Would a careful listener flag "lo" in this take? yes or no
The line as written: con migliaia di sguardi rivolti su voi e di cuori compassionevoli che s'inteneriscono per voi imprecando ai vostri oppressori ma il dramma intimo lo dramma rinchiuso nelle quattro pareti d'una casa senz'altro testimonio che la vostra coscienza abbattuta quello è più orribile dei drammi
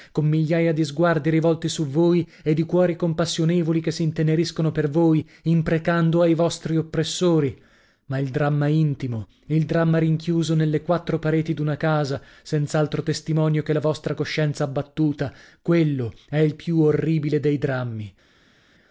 yes